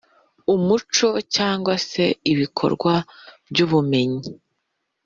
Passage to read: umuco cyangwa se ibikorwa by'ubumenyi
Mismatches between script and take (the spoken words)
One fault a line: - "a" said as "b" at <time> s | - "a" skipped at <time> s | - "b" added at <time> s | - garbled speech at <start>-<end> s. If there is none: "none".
none